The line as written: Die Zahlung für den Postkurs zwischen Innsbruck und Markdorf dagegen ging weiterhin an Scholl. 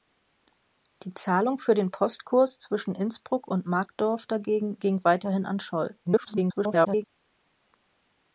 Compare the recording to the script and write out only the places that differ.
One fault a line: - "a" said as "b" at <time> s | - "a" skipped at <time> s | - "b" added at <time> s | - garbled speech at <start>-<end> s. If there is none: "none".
- garbled speech at 6.0-7.0 s